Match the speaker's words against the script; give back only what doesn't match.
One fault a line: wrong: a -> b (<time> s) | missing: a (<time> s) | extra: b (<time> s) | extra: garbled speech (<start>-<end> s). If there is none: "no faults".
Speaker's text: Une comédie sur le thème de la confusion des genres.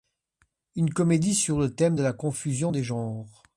no faults